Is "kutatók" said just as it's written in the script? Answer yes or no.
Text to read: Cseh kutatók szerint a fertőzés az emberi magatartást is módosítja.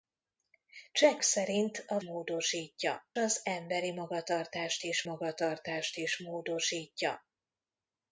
no